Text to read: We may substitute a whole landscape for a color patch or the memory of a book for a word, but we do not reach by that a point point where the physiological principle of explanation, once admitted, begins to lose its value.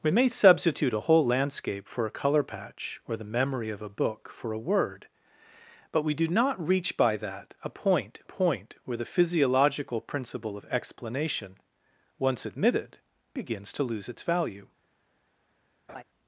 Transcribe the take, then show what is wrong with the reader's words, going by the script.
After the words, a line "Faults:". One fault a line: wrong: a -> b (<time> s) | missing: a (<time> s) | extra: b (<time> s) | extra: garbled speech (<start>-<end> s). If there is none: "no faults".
We may substitute a whole landscape for a color patch or the memory of a book for a word, but we do not reach by that a point point where the physiological principle of explanation, once admitted, begins to lose its value.
Faults:
no faults